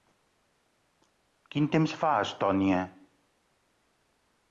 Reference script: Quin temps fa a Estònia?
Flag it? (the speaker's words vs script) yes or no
no